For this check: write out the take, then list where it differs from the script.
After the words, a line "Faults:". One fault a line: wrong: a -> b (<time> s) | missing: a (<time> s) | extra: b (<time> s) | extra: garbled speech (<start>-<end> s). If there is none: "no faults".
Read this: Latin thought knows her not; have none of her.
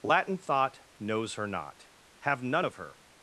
Latin thought knows her not; have none of her.
Faults:
no faults